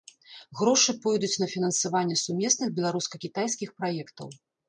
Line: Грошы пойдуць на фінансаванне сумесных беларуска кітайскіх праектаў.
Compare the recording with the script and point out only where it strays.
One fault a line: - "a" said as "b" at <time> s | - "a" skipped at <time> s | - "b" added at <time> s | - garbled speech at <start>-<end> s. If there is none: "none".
none